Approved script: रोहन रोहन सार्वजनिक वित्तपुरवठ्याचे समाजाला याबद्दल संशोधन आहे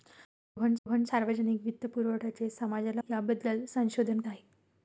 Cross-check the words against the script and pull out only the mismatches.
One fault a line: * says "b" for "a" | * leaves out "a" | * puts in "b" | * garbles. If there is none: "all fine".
all fine